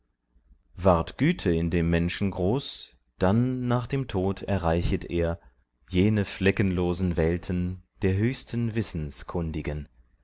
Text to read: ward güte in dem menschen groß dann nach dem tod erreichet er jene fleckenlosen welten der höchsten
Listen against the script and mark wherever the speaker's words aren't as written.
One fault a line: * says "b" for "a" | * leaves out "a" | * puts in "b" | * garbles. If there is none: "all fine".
all fine